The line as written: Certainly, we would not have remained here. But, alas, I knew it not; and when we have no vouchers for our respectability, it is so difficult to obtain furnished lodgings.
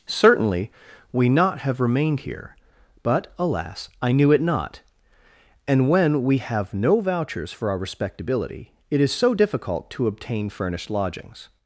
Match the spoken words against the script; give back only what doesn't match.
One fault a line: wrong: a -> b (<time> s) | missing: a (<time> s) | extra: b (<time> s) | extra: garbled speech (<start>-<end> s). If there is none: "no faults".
missing: would (1.3 s)